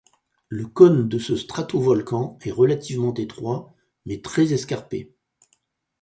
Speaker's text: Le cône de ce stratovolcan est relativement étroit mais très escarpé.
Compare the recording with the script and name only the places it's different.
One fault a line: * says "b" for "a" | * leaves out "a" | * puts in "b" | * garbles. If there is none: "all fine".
all fine